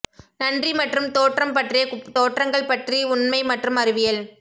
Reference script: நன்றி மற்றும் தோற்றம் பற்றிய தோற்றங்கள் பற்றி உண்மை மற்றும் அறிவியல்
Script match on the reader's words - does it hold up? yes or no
yes